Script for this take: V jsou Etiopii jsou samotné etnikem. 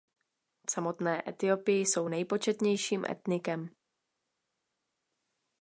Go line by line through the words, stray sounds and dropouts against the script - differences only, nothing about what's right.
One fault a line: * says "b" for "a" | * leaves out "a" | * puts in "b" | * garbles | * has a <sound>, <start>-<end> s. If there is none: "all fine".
* says "samotné" for "jsou"
* says "nejpočetnějším" for "samotné"